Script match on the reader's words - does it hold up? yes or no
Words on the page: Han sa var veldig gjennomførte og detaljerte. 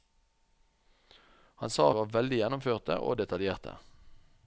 yes